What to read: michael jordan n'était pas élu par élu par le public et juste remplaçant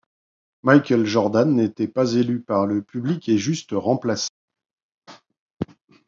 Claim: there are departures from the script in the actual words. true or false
true